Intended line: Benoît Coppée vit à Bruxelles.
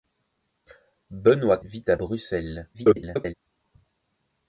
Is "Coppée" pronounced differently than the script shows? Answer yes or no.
yes